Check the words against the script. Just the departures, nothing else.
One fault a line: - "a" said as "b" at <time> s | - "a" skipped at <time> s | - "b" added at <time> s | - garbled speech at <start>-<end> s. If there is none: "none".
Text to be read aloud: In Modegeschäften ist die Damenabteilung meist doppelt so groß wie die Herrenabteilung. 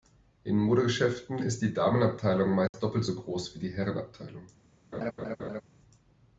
none